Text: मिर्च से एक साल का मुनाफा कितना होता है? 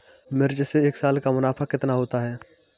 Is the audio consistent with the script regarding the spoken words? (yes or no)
yes